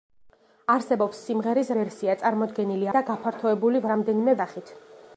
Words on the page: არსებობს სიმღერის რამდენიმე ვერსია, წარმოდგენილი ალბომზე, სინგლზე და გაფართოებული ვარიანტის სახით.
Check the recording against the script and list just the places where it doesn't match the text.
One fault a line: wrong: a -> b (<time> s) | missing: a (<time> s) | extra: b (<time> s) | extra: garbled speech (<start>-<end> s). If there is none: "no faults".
missing: რამდენიმე (1.7 s)
missing: ალბომზე სინგლზე (2.9 s)
wrong: ვარიანტის -> რამდენიმე (3.9 s)